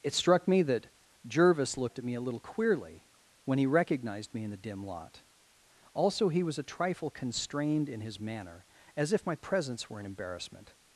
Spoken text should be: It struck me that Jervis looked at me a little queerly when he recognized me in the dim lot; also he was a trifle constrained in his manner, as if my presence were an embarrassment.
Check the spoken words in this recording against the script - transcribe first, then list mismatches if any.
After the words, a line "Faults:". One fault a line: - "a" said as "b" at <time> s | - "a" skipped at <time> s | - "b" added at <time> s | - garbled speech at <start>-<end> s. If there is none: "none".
It struck me that Jervis looked at me a little queerly when he recognized me in the dim lot; also he was a trifle constrained in his manner, as if my presence were an embarrassment.
Faults:
none